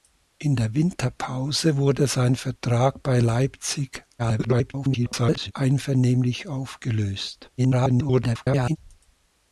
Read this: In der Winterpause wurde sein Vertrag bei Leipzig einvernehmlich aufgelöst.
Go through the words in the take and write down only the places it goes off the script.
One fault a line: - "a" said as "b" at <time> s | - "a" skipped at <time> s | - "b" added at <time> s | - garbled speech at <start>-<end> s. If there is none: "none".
- garbled speech at 4.2-5.5 s
- garbled speech at 7.6-8.8 s